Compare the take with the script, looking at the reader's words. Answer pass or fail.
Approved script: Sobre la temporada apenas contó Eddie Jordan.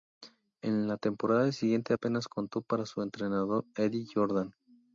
fail